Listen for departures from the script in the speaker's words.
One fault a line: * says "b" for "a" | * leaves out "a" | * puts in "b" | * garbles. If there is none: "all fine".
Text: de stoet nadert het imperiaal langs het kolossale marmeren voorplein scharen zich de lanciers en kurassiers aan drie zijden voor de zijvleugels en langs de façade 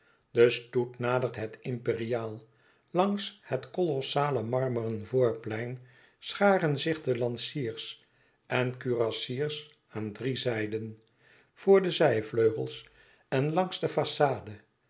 all fine